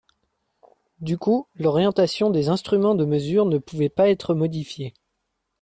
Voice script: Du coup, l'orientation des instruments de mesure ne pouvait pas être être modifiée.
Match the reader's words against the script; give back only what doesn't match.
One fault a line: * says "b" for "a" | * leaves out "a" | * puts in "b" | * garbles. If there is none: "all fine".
* leaves out "être"